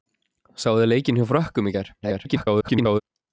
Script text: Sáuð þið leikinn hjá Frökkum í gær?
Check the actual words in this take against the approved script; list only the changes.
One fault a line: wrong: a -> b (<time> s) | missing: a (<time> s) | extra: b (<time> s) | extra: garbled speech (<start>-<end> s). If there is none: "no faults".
extra: garbled speech (2.0-3.0 s)